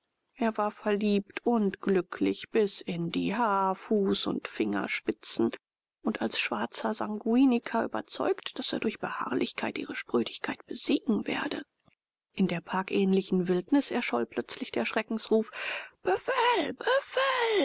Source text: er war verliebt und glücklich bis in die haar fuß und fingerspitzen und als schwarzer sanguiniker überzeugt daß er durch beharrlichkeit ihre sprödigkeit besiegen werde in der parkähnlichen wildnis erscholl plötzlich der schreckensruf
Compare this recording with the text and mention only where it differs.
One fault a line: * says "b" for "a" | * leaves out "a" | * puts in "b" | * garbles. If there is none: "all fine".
all fine